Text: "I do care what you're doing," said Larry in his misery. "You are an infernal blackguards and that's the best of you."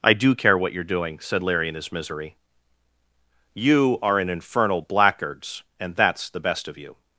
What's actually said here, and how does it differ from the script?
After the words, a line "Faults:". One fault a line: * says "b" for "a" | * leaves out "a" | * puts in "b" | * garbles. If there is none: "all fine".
"I do care what you're doing," said Larry in his misery. "You are an infernal blackguards and that's the best of you."
Faults:
all fine